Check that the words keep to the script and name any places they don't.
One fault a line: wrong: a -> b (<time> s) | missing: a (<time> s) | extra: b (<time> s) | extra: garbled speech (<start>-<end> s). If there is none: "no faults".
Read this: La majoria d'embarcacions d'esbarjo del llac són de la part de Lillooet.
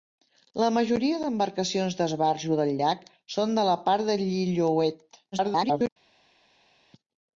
extra: garbled speech (5.3-5.9 s)